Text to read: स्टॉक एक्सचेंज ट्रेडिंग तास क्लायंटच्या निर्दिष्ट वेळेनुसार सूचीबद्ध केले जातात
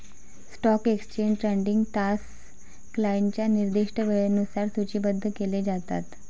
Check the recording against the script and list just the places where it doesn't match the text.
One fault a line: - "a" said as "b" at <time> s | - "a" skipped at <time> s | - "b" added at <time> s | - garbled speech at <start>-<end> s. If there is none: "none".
none